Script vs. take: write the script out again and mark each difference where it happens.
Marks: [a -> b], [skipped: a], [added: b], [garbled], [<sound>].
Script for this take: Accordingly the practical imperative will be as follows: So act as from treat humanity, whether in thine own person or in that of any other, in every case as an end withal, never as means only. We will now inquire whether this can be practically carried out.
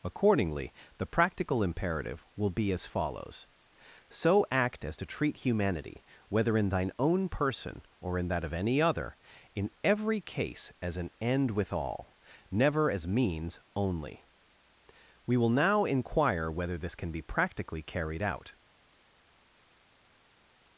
Accordingly the practical imperative will be as follows: So act as [from -> to] treat humanity, whether in thine own person or in that of any other, in every case as an end withal, never as means only. We will now inquire whether this can be practically carried out.